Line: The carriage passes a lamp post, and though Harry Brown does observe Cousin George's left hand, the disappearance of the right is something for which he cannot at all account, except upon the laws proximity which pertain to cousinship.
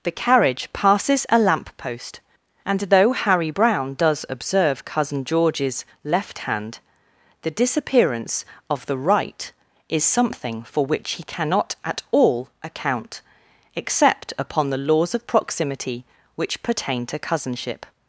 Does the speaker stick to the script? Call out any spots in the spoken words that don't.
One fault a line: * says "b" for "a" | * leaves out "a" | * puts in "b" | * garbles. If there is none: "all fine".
* puts in "of"